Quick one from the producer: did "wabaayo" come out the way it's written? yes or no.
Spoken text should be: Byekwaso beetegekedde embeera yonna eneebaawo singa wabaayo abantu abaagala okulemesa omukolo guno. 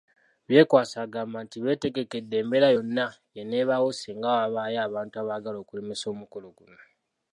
yes